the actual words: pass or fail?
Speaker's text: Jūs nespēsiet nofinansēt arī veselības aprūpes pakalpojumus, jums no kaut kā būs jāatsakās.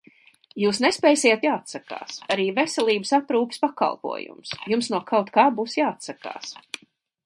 fail